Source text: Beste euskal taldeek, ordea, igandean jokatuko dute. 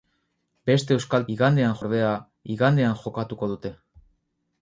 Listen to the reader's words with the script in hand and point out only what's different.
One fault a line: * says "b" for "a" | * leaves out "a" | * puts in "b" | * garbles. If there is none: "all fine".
* says "igandean" for "taldeek"